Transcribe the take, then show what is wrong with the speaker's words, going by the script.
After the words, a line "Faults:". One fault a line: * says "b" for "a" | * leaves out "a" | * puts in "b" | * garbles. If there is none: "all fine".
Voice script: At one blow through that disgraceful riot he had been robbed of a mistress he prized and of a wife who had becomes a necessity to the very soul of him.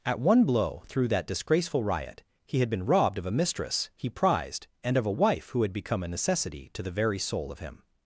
At one blow through that disgraceful riot he had been robbed of a mistress he prized and of a wife who had become a necessity to the very soul of him.
Faults:
* says "become" for "becomes"